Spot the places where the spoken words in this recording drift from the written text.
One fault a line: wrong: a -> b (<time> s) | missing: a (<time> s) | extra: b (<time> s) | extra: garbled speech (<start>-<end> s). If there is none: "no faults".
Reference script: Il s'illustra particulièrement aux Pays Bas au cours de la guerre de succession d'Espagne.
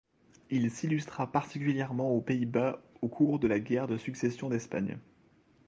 no faults